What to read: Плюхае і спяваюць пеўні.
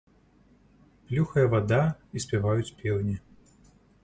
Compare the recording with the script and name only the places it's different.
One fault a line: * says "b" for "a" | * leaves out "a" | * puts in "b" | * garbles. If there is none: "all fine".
* puts in "вада"